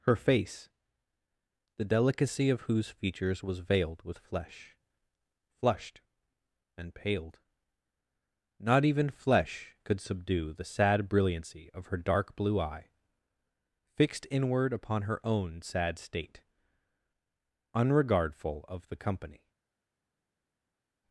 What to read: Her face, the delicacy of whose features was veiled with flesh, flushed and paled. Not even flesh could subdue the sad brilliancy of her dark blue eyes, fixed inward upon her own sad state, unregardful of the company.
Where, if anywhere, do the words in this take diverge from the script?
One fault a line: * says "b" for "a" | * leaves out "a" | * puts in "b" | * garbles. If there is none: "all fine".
* says "eye" for "eyes"